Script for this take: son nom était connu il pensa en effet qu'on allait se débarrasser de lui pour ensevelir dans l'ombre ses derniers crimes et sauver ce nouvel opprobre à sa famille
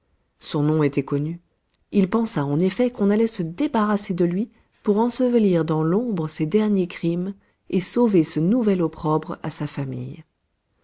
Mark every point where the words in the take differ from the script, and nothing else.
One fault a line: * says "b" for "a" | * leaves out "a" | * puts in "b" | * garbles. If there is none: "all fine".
all fine